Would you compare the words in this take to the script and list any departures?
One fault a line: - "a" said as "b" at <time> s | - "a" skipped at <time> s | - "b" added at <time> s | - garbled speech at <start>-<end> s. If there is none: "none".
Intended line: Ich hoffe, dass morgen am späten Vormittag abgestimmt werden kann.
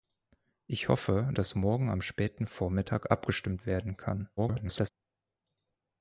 - garbled speech at 4.4-4.9 s